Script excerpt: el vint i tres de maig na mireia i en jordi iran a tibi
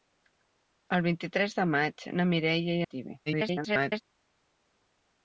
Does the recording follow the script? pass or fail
fail